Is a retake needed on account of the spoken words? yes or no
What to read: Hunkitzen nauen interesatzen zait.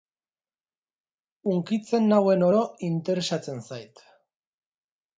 yes